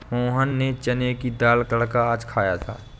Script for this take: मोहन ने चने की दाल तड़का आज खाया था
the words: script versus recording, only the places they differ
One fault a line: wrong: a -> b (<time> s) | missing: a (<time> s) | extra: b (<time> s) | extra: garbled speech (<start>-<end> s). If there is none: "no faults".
no faults